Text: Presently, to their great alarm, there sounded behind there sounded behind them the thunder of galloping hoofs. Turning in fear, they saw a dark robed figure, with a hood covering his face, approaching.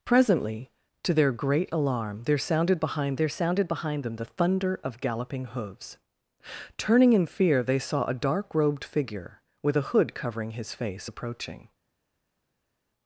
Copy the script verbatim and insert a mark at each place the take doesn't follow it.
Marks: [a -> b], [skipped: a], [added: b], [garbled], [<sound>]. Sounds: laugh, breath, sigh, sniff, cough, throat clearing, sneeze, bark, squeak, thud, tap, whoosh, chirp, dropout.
Presently, to their great alarm, there sounded behind there sounded behind them the thunder of galloping hoofs. Turning in fear, they saw a dark robed figure, with a hood covering his face, approaching.